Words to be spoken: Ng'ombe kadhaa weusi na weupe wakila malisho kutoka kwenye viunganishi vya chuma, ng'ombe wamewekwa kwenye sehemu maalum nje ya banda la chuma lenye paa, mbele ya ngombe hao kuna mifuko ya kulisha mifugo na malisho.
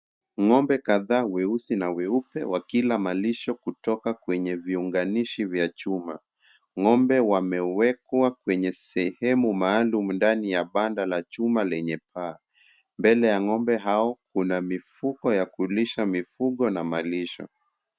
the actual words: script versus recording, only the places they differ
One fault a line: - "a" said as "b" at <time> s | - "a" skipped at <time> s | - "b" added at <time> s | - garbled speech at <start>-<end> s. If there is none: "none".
- "nje" said as "ndani" at 10.1 s